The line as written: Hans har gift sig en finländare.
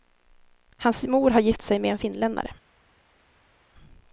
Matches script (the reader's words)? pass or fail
fail